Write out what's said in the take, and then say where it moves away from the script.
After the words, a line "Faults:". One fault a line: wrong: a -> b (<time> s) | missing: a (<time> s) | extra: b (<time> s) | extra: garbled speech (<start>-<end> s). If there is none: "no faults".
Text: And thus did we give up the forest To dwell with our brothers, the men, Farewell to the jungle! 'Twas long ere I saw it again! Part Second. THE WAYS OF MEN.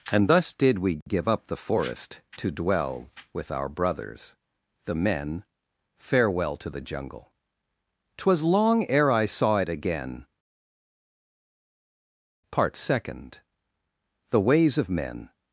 And thus did we give up the forest To dwell with our brothers, the men, Farewell to the jungle! 'Twas long ere I saw it again! Part Second. THE WAYS OF MEN.
Faults:
no faults